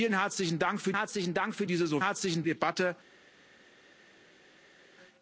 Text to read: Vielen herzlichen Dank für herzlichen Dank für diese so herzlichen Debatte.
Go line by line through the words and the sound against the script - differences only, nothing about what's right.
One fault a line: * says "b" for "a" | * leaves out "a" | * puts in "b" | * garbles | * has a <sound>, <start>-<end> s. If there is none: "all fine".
all fine